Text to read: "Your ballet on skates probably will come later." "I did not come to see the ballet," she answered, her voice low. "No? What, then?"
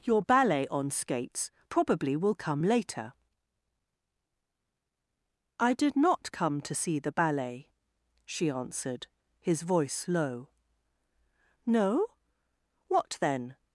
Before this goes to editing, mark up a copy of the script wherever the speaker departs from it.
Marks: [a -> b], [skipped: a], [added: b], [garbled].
"Your ballet on skates probably will come later." "I did not come to see the ballet," she answered, [her -> his] voice low. "No? What, then?"